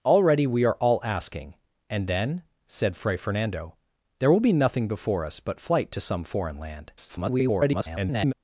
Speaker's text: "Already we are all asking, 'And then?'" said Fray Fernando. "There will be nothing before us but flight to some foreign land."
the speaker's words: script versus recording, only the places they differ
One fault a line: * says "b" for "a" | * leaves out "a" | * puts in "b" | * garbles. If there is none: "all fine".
* garbles